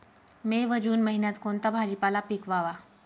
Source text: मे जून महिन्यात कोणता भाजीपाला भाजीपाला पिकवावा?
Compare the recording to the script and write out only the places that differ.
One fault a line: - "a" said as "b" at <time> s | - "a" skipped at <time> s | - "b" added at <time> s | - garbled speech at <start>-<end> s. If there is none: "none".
- "व" added at 0.7 s
- "भाजीपाला" skipped at 2.2 s